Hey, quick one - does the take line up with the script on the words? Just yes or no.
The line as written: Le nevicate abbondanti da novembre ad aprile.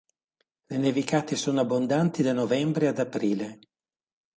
no